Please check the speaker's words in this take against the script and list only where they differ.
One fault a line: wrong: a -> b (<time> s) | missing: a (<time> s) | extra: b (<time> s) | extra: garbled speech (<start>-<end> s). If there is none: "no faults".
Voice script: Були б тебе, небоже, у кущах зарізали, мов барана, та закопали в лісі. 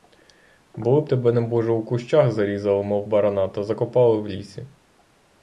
no faults